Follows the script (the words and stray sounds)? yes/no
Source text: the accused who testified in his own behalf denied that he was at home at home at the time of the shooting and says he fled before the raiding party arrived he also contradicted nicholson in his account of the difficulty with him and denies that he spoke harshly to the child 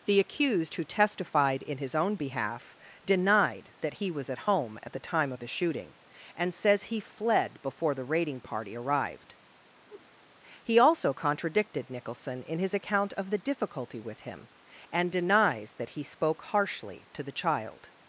no